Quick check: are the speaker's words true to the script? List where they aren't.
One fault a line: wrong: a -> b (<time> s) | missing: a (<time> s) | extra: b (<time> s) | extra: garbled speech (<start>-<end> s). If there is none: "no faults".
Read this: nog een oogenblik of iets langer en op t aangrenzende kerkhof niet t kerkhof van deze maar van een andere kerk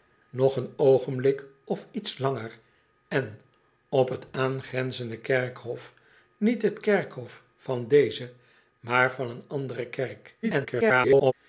extra: garbled speech (10.4-11.3 s)